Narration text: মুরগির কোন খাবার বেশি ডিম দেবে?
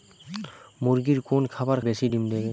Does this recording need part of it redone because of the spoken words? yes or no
no